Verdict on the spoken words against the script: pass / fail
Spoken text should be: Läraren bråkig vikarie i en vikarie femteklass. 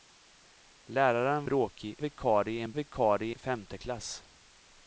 pass